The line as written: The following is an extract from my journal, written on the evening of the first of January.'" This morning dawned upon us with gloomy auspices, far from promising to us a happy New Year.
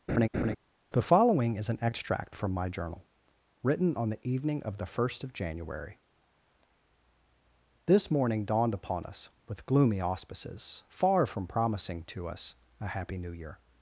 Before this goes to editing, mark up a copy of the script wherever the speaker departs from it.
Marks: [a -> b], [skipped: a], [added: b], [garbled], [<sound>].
[laugh] The following is an extract from my journal, written on the evening of the first of January.'" This morning dawned upon us with gloomy auspices, far from promising to us a happy New Year.